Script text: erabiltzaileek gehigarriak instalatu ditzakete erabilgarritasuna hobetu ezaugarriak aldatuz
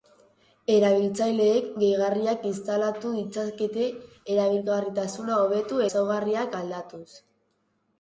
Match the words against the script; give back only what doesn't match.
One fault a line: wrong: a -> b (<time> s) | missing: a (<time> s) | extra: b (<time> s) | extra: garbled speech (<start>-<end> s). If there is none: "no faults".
no faults